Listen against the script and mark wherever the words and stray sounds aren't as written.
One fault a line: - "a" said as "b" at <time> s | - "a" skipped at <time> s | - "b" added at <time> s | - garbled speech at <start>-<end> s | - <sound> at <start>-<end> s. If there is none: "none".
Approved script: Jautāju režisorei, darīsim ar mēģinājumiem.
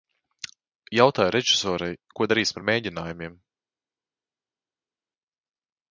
- "ko" added at 2.2 s